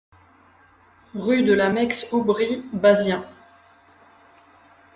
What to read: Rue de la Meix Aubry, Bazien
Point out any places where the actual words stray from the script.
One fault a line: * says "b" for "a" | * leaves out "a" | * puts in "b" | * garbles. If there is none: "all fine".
all fine